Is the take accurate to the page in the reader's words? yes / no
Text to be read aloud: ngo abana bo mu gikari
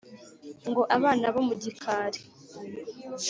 yes